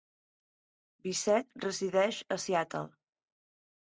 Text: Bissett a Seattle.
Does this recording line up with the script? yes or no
no